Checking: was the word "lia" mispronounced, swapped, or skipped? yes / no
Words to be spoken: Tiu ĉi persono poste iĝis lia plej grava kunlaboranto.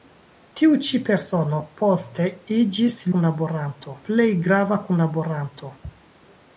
yes